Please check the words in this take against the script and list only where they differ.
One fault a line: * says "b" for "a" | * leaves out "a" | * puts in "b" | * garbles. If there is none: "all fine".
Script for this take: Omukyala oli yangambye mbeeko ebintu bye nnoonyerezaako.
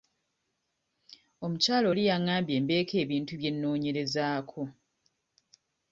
all fine